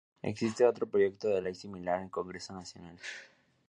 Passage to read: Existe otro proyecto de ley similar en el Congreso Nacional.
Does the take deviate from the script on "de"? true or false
false